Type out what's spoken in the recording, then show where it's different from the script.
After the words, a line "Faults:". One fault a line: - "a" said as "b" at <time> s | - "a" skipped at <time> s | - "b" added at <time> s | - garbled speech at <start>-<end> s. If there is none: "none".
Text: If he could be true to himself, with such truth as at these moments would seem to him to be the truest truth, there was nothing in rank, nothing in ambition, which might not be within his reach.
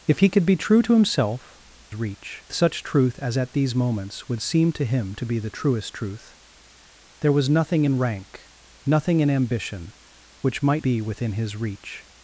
If he could be true to himself, reach such truth as at these moments would seem to him to be the truest truth, there was nothing in rank, nothing in ambition, which might be within his reach.
Faults:
- "with" said as "reach" at 1.9 s
- "not" skipped at 10.8 s